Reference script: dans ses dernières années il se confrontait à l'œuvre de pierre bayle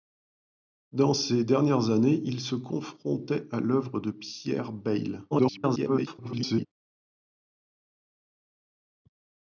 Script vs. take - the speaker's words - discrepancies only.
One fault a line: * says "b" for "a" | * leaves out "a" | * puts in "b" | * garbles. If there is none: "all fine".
* garbles